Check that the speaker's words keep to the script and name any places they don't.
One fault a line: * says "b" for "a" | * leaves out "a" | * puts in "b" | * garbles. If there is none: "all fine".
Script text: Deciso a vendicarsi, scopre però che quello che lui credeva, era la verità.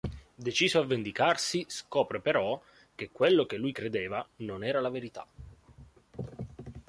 * puts in "non"